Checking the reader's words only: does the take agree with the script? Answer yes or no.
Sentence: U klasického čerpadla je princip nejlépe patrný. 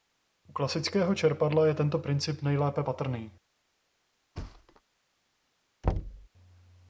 no